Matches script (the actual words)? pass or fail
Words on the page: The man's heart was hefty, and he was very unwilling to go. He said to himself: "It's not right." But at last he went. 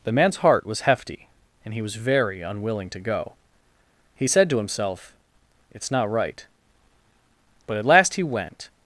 pass